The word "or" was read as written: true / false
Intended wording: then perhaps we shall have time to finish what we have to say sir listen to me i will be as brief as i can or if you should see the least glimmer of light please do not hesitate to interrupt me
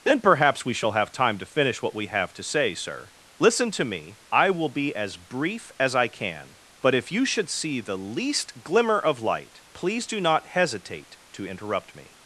false